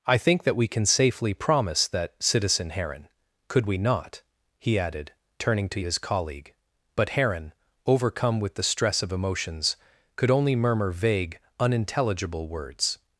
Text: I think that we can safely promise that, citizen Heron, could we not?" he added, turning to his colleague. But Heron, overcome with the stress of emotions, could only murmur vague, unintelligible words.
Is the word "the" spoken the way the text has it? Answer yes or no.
yes